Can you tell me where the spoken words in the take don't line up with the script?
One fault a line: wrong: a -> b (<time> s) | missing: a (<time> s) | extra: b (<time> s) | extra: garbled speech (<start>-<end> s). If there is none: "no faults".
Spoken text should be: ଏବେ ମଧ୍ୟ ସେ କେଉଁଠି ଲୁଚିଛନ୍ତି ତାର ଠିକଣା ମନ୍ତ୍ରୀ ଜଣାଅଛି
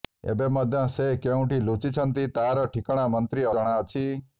no faults